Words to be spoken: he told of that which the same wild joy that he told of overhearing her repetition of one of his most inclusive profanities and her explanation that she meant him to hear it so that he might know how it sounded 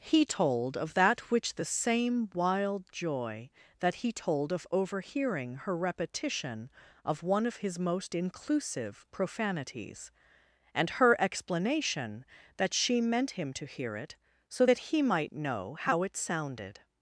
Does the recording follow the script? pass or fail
pass